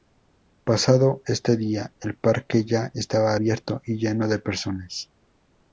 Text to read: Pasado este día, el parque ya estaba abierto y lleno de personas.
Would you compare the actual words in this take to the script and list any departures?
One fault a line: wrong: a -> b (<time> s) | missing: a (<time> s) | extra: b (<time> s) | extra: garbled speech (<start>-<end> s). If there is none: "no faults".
no faults